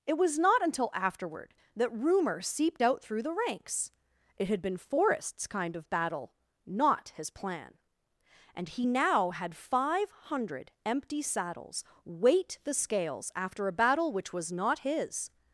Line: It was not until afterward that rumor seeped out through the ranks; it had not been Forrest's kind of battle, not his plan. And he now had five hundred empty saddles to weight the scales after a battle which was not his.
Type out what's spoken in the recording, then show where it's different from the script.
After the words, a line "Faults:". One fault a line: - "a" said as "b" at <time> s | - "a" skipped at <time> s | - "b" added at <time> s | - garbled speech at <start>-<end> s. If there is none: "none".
It was not until afterward that rumor seeped out through the ranks; it had been Forrest's kind of battle, not his plan. And he now had five hundred empty saddles weight the scales after a battle which was not his.
Faults:
- "not" skipped at 4.6 s
- "to" skipped at 11.8 s